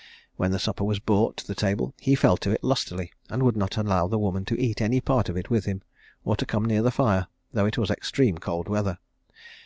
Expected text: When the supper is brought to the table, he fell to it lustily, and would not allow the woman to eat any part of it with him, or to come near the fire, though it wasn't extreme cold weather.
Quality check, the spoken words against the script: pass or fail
fail